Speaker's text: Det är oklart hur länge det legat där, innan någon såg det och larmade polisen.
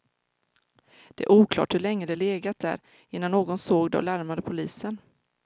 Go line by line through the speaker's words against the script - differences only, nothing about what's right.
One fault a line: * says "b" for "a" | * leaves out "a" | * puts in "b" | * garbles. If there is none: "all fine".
all fine